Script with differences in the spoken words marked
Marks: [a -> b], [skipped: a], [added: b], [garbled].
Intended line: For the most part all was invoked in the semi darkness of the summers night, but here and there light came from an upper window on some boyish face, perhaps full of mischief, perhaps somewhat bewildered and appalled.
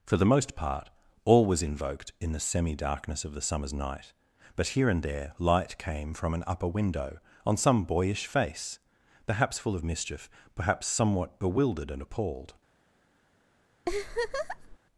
For the most part all was invoked in the semi darkness of the summers night, but here and there light came from an upper window on some boyish face, perhaps full of mischief, perhaps somewhat bewildered and appalled.